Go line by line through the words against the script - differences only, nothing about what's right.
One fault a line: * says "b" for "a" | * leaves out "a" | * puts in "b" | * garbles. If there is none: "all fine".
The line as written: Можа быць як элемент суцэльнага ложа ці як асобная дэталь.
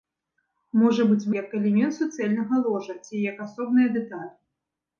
all fine